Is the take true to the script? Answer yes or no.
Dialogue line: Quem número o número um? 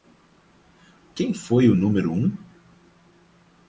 no